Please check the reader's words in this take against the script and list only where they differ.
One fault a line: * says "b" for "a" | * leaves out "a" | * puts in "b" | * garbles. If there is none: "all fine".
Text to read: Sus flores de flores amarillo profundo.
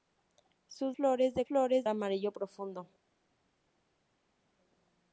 all fine